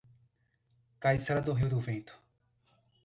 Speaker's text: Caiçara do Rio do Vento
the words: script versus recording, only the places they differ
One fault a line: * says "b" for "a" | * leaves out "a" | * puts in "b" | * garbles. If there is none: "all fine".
all fine